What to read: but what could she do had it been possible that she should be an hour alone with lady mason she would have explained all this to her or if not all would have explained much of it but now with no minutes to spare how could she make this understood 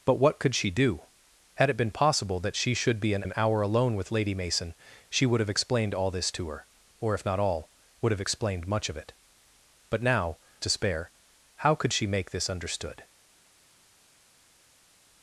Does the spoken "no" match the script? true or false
false